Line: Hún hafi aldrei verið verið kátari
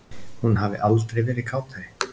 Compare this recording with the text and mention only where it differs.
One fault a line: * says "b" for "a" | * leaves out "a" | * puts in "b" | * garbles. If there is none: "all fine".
* leaves out "verið"